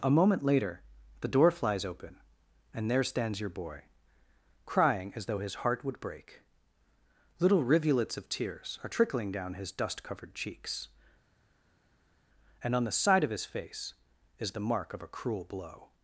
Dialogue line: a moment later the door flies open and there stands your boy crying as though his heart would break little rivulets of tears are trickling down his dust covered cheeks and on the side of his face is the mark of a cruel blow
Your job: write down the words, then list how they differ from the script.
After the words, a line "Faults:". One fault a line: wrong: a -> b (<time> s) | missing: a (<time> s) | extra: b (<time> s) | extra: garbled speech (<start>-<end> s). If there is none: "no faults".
a moment later the door flies open and there stands your boy crying as though his heart would break little rivulets of tears are trickling down his dust covered cheeks and on the side of his face is the mark of a cruel blow
Faults:
no faults